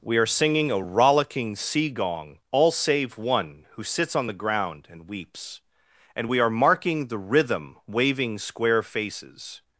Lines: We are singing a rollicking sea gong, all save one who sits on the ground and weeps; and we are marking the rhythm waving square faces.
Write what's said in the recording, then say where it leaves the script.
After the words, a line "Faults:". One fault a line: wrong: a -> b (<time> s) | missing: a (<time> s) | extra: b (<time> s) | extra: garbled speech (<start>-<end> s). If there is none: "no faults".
We are singing a rollicking sea gong, all save one who sits on the ground and weeps; and we are marking the rhythm waving square faces.
Faults:
no faults